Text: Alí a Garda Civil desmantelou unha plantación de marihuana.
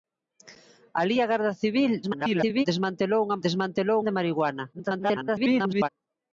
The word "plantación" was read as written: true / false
false